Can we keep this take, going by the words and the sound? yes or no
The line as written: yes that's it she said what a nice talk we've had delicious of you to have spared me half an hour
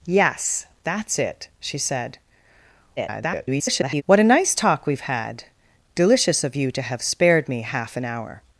no